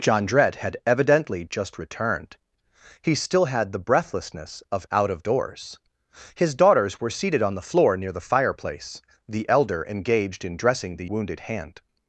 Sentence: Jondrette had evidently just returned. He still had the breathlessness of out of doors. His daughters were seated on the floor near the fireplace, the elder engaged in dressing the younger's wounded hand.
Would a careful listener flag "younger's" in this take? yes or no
yes